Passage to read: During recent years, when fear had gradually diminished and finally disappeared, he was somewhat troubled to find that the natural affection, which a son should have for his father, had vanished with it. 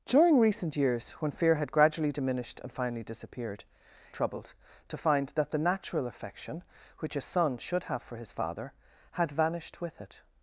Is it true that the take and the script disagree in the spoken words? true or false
true